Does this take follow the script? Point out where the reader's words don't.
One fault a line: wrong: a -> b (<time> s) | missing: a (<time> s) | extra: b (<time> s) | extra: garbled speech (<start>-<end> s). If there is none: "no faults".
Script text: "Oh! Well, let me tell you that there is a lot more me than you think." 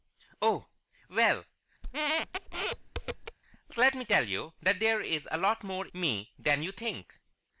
no faults